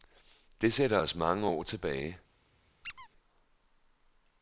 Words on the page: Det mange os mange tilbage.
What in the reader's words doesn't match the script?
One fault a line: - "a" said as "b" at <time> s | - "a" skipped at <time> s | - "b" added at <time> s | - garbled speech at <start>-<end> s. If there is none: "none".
- "mange" said as "sætter" at 0.7 s
- "år" added at 1.5 s